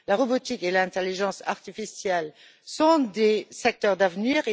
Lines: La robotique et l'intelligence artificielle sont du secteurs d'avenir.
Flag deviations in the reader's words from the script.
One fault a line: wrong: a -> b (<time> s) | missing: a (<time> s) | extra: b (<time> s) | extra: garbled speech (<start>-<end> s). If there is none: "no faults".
wrong: du -> des (3.0 s)